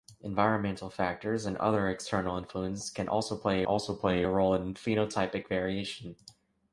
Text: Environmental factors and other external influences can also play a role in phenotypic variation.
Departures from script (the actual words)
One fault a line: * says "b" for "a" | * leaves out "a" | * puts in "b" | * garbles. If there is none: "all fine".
* puts in "also play"